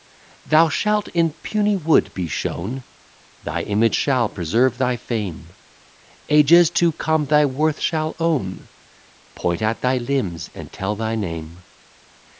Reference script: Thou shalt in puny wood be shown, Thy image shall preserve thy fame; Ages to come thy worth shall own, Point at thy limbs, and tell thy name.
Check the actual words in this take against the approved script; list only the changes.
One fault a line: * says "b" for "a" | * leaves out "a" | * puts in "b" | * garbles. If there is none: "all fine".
all fine